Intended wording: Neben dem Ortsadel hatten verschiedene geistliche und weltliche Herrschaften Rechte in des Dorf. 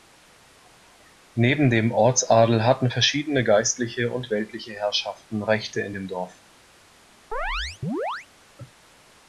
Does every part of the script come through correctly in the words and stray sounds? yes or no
no